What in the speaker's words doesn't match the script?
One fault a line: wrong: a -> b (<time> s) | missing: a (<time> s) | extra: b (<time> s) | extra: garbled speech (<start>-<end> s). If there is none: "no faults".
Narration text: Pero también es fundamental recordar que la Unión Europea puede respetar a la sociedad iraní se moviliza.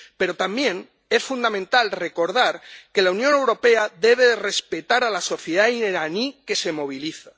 wrong: puede -> debe (4.0 s)
extra: que (6.5 s)